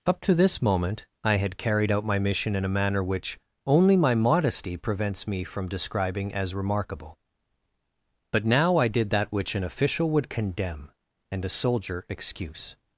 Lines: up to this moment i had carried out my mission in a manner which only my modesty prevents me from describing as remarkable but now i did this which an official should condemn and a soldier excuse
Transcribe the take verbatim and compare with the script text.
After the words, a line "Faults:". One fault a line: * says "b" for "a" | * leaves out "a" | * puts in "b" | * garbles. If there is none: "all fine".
up to this moment i had carried out my mission in a manner which only my modesty prevents me from describing as remarkable but now i did that which an official would condemn and a soldier excuse
Faults:
* says "that" for "this"
* says "would" for "should"